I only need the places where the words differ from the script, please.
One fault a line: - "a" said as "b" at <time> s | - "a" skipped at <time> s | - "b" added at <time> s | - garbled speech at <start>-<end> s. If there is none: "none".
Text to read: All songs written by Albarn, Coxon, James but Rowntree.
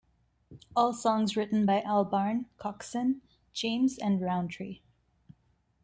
- "but" said as "and" at 4.0 s